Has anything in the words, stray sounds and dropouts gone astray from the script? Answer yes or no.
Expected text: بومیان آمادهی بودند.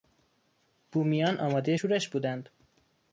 yes